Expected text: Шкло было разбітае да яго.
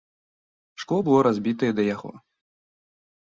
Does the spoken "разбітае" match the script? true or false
true